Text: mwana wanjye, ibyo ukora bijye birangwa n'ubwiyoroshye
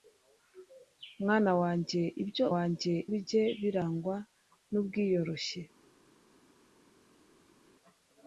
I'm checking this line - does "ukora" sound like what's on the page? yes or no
no